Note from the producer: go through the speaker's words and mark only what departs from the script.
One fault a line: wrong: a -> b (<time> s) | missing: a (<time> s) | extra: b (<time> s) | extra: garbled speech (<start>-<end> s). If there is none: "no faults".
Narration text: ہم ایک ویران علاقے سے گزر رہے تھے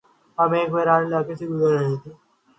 no faults